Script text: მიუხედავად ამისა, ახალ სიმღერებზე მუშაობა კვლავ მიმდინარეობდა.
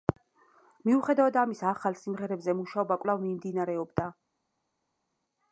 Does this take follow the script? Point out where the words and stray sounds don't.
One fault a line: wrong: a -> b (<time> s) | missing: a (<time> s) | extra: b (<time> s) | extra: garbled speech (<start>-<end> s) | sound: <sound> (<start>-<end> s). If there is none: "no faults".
no faults